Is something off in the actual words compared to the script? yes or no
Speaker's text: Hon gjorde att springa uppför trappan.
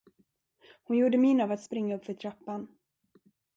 yes